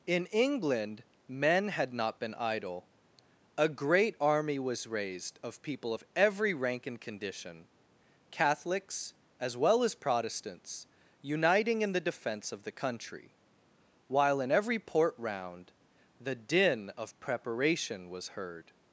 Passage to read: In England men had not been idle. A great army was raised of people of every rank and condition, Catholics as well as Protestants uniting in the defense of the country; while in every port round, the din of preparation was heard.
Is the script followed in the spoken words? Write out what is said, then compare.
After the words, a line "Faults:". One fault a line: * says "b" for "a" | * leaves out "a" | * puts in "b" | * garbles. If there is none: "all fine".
In England men had not been idle. A great army was raised of people of every rank and condition, Catholics as well as Protestants uniting in the defense of the country; while in every port round, the din of preparation was heard.
Faults:
all fine